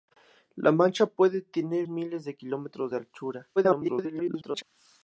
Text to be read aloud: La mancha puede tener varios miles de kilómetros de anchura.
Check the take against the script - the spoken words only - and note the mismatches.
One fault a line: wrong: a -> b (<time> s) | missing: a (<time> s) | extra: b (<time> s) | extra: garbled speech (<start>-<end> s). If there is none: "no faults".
missing: varios (1.9 s)
extra: garbled speech (3.6-4.6 s)